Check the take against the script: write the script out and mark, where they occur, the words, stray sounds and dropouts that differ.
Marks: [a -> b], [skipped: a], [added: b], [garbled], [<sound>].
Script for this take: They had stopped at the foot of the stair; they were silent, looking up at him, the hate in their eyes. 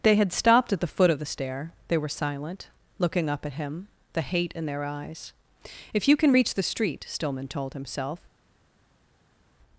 They had stopped at the foot of the stair; they were silent, looking up at him, the hate in their eyes. [added: If you can reach the street Stillman told himself]